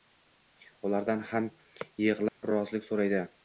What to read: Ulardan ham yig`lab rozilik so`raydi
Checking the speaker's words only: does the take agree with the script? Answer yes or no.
yes